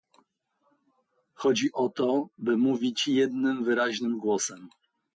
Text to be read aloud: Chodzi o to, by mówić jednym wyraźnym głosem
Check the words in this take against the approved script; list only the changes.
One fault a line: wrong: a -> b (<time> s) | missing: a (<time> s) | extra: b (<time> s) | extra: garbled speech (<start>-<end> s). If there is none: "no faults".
no faults